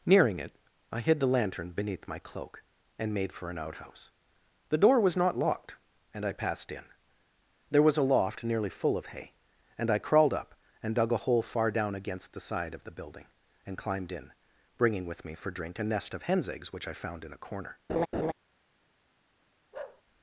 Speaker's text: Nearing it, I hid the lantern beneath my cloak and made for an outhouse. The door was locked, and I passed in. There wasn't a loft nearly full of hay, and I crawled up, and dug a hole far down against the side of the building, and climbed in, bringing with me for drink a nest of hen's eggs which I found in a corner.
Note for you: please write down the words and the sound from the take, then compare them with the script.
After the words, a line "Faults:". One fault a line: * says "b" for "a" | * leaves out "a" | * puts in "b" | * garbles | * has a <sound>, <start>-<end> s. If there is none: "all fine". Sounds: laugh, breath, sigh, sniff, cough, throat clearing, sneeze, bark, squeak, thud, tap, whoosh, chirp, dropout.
Nearing it, I hid the lantern beneath my cloak and made for an outhouse. The door was not locked, and I passed in. There was a loft nearly full of hay, and I crawled up, and dug a hole far down against the side of the building, and climbed in, bringing with me for drink a nest of hen's eggs which I found in a corner.
Faults:
* puts in "not"
* says "was" for "wasn't"
* has a laugh, 17.9-18.3 s
* has a bark, 19.7-20.0 s